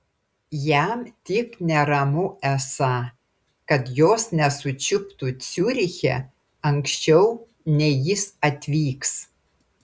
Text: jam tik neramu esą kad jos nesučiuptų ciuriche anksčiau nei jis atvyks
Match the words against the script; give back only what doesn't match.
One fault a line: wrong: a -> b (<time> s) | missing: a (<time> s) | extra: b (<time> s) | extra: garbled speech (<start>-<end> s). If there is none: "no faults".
no faults